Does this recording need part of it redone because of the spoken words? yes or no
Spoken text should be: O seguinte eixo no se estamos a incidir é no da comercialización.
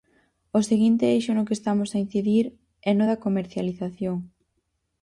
yes